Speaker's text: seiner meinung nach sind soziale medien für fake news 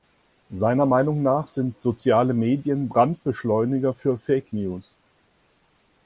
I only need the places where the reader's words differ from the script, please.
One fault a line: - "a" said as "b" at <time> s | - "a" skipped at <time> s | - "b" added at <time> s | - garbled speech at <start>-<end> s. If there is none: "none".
- "brandbeschleuniger" added at 2.9 s